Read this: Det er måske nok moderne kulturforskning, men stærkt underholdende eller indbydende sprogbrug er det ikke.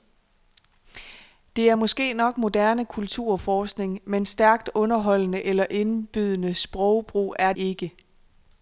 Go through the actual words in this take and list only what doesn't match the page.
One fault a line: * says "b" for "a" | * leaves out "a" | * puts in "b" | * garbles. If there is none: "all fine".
* leaves out "det"